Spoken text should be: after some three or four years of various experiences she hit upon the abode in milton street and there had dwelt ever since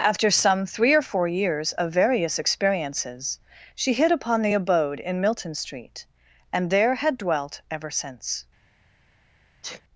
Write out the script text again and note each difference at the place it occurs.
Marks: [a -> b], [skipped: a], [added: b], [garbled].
after some three or four years of various experiences she hit upon the abode in milton street and there had dwelt ever since